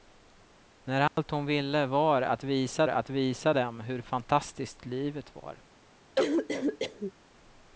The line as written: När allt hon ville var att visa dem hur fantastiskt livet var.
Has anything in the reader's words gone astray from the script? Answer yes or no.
yes